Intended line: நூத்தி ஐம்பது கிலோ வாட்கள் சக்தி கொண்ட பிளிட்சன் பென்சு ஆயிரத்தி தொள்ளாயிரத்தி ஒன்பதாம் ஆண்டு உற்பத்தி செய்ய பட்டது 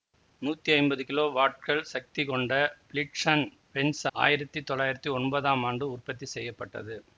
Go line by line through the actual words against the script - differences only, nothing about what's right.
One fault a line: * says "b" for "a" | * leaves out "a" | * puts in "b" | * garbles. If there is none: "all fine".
all fine